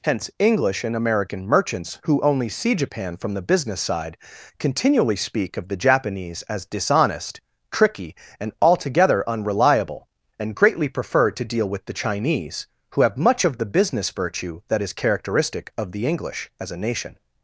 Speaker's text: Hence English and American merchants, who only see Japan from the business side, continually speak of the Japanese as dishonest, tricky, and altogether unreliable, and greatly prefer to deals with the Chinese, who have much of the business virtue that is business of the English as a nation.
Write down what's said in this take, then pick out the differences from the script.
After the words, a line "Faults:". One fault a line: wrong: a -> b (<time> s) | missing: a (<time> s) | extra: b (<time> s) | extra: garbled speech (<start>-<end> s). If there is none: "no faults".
Hence English and American merchants, who only see Japan from the business side, continually speak of the Japanese as dishonest, tricky, and altogether unreliable, and greatly prefer to deal with the Chinese, who have much of the business virtue that is characteristic of the English as a nation.
Faults:
wrong: deals -> deal (11.4 s)
wrong: business -> characteristic (14.9 s)